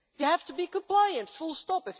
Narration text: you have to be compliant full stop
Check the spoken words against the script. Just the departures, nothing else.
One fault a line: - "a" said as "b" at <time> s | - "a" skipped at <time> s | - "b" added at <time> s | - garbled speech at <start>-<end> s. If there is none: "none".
none